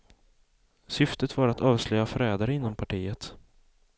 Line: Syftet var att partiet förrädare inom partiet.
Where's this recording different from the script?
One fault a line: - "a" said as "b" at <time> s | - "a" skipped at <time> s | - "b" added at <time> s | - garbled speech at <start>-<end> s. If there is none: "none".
- "partiet" said as "avslöja" at 1.6 s